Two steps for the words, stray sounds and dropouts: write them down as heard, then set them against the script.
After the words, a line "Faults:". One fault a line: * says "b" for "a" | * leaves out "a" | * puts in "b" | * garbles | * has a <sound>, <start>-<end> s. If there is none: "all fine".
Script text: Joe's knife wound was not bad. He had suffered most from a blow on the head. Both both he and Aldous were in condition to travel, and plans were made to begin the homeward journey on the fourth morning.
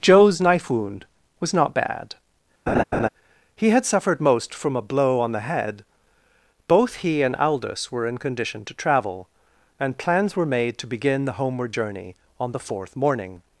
Joe's knife wound was not bad. He had suffered most from a blow on the head. Both he and Aldous were in condition to travel, and plans were made to begin the homeward journey on the fourth morning.
Faults:
* has a laugh, 2.7-3.1 s
* leaves out "both"